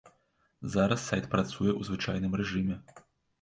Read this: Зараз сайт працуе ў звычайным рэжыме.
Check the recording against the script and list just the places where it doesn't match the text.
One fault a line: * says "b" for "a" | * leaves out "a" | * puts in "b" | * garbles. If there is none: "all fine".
all fine